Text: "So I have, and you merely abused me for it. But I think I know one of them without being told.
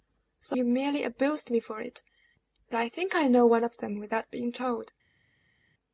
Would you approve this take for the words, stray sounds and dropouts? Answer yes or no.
no